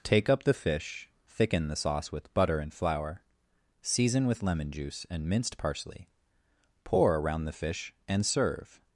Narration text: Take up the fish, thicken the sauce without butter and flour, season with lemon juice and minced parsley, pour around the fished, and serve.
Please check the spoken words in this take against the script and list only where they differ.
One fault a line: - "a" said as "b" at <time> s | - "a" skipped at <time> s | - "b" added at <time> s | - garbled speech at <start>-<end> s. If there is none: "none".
- "without" said as "with" at 2.1 s
- "fished" said as "fish" at 7.5 s